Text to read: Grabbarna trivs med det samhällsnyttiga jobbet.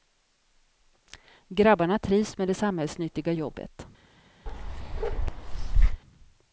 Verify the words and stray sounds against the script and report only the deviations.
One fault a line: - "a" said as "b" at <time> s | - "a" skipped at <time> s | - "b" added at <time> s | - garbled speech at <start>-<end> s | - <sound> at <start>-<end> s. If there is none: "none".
- bark at 4.5-6.0 s